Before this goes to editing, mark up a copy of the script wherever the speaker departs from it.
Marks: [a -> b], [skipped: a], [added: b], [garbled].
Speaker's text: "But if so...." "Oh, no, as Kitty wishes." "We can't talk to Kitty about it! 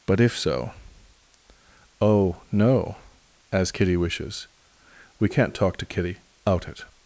"But if so...." "Oh, no, as Kitty wishes." "We can't talk to Kitty [about -> out] it!